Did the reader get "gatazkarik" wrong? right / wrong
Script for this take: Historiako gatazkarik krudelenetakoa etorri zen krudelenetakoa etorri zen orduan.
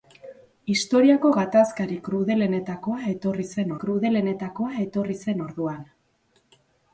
right